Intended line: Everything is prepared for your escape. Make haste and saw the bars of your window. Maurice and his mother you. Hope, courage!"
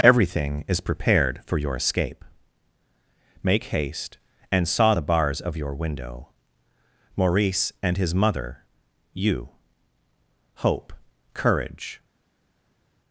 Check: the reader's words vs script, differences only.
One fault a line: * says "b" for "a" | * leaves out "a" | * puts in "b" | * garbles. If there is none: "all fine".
all fine